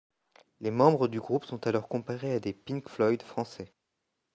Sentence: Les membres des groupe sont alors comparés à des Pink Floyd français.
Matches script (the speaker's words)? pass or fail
fail